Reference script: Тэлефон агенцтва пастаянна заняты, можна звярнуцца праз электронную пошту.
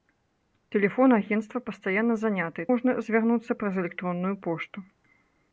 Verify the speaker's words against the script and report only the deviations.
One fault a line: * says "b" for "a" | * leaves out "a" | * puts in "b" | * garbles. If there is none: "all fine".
all fine